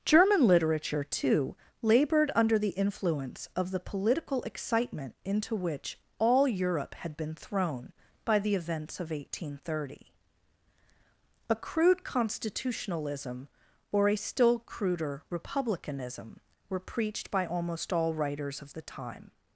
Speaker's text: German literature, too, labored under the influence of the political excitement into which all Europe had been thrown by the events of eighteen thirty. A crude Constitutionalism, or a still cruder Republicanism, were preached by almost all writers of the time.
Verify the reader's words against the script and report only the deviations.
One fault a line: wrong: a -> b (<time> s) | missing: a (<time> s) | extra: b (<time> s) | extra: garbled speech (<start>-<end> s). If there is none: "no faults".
no faults